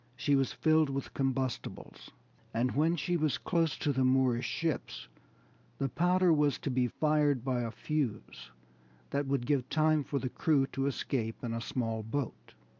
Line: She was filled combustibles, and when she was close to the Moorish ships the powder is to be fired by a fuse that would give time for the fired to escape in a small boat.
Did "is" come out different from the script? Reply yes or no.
yes